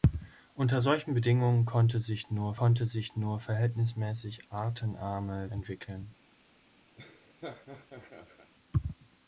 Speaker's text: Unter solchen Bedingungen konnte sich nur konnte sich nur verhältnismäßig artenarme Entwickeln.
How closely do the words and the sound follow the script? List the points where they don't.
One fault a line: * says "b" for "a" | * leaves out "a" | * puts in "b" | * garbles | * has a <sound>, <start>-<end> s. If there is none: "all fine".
* has a laugh, 7.0-8.5 s